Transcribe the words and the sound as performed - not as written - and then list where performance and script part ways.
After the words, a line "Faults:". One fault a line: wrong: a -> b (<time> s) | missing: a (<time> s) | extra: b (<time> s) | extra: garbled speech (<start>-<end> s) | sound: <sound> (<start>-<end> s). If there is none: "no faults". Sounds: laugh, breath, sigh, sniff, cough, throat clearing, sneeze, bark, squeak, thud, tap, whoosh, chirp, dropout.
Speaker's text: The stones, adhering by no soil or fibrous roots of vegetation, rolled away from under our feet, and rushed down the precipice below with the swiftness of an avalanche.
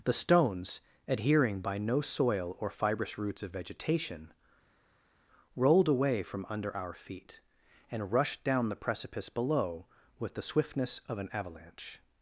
The stones, adhering by no soil or fibrous roots of vegetation, rolled away from under our feet, and rushed down the precipice below with the swiftness of an avalanche.
Faults:
no faults